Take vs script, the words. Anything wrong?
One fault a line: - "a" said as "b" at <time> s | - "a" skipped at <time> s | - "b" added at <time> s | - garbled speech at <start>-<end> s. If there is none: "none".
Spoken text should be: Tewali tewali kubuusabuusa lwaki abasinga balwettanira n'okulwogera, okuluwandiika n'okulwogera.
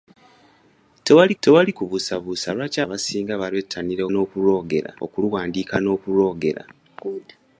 none